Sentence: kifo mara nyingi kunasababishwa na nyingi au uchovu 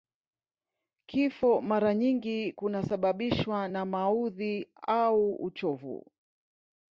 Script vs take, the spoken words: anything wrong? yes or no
yes